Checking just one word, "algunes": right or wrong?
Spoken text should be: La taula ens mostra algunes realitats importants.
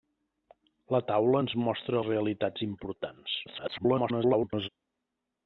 wrong